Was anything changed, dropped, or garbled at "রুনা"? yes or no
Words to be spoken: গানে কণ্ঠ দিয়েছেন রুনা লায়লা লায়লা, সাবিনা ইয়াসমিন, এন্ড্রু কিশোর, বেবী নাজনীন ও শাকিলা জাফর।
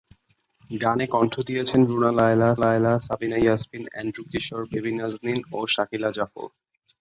no